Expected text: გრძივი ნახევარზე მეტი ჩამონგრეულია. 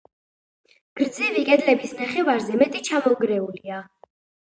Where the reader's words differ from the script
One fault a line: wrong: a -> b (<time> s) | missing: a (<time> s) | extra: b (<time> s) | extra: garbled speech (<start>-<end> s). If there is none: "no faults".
extra: კედლების (1.5 s)